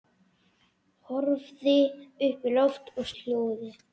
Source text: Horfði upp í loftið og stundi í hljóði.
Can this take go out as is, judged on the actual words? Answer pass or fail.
fail